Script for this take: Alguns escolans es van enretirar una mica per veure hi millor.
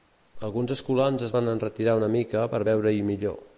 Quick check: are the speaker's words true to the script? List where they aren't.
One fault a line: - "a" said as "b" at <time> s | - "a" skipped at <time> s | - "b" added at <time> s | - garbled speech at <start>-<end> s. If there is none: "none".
none